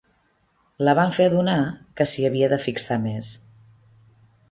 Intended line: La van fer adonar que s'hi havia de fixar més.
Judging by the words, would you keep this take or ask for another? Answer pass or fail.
pass